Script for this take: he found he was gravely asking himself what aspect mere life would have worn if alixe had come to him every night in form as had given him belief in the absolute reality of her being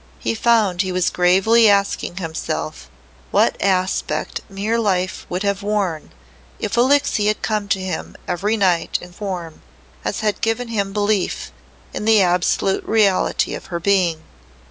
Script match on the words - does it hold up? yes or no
yes